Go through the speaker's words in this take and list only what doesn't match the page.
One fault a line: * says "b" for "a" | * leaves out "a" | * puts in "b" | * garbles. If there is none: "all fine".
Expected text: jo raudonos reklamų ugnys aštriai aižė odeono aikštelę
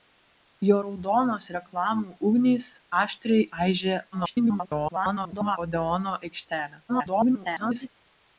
* garbles
* garbles